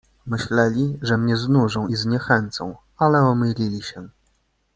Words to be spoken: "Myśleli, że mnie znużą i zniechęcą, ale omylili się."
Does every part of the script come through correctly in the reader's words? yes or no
yes